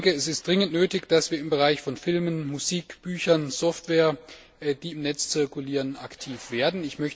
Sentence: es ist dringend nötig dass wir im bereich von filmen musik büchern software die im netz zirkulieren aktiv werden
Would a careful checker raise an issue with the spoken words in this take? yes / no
no